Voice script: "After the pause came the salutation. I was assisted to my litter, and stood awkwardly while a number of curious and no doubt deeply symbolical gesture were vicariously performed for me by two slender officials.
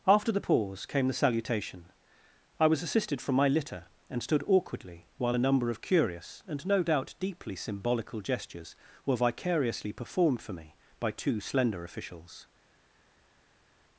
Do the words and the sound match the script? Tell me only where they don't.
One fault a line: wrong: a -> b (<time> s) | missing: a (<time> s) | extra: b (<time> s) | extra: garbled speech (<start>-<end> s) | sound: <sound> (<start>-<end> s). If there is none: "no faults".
wrong: to -> from (3.2 s)
wrong: gesture -> gestures (8.2 s)